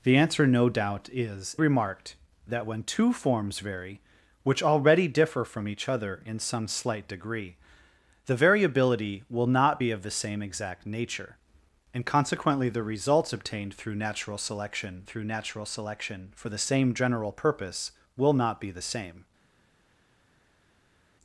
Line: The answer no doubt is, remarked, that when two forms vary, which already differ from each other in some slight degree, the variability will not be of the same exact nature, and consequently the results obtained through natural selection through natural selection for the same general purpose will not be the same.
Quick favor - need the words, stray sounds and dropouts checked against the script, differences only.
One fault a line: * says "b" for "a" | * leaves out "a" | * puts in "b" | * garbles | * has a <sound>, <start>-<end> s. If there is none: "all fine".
all fine